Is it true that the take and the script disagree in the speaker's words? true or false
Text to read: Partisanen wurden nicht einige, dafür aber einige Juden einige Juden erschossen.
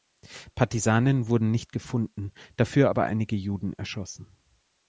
true